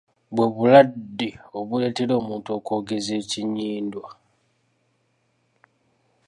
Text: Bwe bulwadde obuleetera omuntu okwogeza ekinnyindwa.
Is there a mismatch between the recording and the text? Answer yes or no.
no